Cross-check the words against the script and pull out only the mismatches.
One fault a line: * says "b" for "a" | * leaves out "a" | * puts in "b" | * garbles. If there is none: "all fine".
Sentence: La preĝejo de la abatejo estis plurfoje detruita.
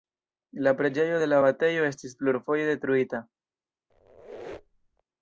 all fine